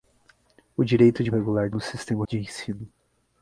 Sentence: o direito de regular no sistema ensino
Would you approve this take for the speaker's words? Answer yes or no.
yes